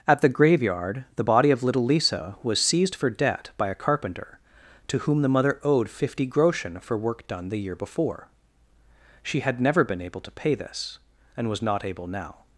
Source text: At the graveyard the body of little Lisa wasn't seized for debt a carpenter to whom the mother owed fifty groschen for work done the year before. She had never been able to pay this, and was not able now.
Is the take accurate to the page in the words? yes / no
no